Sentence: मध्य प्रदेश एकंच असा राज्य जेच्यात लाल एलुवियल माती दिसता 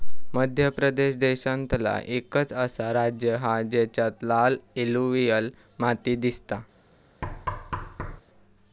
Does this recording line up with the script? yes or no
no